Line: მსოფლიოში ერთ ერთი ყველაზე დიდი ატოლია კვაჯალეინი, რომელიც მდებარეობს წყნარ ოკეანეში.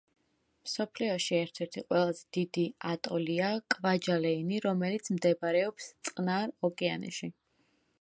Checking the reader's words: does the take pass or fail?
pass